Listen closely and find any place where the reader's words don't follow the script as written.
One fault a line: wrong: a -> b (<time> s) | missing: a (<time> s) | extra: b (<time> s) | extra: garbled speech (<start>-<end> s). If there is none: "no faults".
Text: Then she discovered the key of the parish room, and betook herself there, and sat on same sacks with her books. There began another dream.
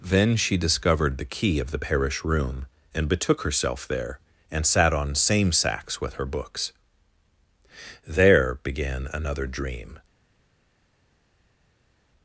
no faults